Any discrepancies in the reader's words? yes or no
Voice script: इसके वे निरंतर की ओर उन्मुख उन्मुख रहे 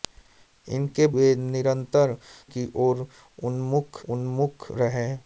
no